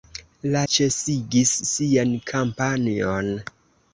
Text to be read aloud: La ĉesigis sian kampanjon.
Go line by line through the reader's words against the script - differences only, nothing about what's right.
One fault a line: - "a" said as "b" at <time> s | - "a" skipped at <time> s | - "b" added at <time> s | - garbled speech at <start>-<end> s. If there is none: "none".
none